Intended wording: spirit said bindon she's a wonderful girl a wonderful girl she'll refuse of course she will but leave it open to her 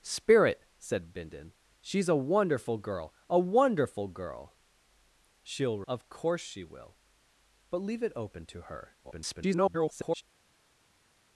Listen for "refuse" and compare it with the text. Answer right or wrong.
wrong